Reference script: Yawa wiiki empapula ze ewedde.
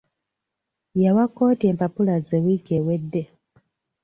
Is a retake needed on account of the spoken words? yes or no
yes